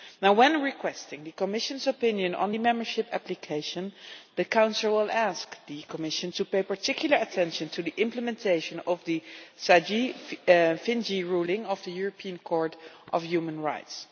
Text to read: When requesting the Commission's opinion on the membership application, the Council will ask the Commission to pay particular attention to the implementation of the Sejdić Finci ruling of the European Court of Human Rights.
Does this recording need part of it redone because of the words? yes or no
no